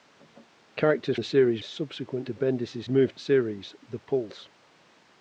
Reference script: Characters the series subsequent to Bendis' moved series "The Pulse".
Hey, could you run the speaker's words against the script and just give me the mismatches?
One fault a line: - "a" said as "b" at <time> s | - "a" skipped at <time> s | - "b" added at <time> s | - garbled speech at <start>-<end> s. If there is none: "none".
none